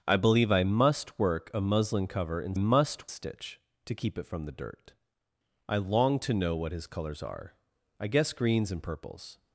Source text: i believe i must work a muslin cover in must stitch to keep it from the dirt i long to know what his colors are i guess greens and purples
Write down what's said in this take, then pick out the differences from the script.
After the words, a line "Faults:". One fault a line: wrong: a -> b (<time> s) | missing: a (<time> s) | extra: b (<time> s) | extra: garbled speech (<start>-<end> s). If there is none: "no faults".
i believe i must work a muslin cover in must stitch to keep it from the dirt i long to know what his colors are i guess greens and purples
Faults:
no faults